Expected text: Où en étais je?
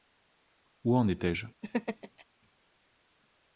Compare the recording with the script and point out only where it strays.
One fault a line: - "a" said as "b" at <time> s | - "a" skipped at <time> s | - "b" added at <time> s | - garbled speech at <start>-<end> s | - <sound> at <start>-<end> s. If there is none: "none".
- laugh at 1.6-2.2 s